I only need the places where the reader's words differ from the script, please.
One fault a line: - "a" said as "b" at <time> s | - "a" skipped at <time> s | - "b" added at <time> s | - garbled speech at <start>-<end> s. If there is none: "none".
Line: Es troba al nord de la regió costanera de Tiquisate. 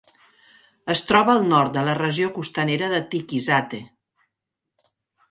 none